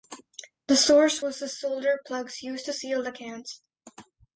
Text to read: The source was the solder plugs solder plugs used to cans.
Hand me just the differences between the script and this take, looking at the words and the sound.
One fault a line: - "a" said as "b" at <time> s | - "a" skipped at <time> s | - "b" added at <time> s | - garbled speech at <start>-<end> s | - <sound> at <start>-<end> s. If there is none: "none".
- "solder plugs used to" said as "used to seal the" at 2.4 s